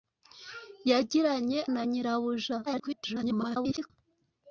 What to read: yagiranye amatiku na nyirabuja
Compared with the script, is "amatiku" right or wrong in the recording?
wrong